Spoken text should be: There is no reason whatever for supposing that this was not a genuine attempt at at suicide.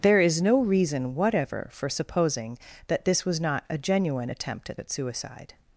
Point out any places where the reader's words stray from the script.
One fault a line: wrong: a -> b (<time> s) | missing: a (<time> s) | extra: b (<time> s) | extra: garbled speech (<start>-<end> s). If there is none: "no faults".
no faults